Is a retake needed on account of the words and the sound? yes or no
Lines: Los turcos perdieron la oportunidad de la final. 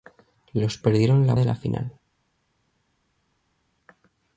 yes